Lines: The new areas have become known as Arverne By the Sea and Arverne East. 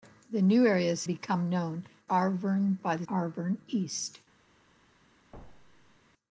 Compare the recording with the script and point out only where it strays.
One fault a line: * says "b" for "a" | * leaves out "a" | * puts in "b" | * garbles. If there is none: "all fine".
* leaves out "have"
* leaves out "as"
* leaves out "Sea and"